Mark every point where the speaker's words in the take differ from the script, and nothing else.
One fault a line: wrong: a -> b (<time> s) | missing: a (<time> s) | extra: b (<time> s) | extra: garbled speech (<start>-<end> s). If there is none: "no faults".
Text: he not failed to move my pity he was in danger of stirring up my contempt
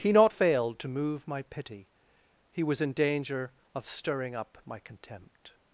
no faults